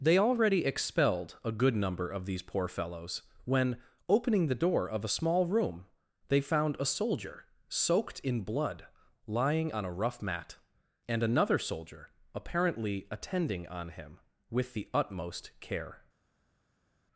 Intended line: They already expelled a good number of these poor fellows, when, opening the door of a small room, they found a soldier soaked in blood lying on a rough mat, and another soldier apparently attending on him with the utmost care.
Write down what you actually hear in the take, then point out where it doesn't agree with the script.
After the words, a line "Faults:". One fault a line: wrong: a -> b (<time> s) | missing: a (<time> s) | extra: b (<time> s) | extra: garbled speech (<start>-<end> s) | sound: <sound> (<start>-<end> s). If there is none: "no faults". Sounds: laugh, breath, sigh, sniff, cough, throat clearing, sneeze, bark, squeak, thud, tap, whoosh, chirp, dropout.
They already expelled a good number of these poor fellows, when, opening the door of a small room, they found a soldier soaked in blood lying on a rough mat, and another soldier apparently attending on him with the utmost care.
Faults:
no faults